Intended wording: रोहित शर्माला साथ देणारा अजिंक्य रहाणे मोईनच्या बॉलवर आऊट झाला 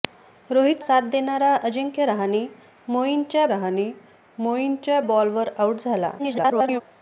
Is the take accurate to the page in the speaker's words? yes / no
no